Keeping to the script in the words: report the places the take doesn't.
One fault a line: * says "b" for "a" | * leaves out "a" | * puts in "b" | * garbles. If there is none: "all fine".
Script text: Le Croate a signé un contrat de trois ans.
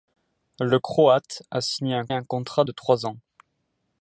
* puts in "un"